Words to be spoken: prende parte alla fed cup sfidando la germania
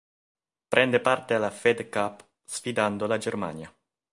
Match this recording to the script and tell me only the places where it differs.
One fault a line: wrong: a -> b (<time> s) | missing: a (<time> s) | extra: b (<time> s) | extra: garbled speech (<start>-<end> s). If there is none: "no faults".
no faults